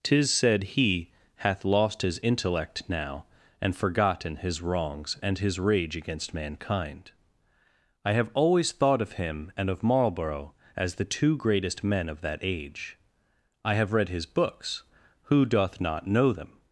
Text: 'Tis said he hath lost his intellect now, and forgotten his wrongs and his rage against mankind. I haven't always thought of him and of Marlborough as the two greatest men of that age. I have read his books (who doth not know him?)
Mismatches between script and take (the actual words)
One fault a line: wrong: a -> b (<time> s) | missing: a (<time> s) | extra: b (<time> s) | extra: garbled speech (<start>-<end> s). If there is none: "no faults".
wrong: haven't -> have (8.1 s)
wrong: him -> them (16.3 s)